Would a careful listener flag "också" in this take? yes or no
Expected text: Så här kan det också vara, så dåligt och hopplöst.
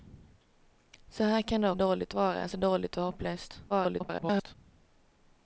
yes